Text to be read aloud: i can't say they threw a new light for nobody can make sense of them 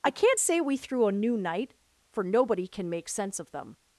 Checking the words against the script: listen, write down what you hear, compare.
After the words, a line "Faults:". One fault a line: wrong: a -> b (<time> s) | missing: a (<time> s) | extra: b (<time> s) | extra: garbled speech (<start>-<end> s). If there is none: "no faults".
i can't say we threw a new night for nobody can make sense of them
Faults:
wrong: they -> we (0.6 s)
wrong: light -> night (1.4 s)